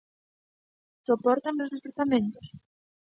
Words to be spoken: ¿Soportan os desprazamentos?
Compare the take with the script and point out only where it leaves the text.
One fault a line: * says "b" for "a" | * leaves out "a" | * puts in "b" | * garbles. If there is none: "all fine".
all fine